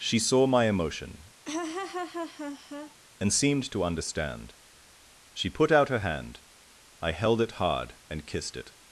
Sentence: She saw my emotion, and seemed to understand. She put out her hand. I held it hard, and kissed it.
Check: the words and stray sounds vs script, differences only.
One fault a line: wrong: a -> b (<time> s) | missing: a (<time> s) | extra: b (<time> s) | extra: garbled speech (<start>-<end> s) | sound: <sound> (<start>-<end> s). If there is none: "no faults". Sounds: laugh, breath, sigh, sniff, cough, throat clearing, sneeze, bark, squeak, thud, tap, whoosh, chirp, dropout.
sound: laugh (1.4-3.0 s)